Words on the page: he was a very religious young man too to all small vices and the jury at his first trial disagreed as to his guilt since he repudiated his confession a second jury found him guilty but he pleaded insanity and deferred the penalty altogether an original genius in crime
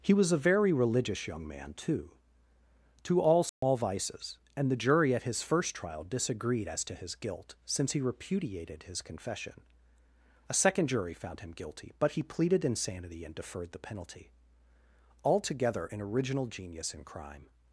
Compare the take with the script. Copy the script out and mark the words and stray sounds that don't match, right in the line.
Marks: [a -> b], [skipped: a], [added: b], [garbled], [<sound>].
he was a very religious young man too to all small [dropout] vices and the jury at his first trial disagreed as to his guilt since he repudiated his confession a second jury found him guilty but he pleaded insanity and deferred the penalty altogether an original genius in crime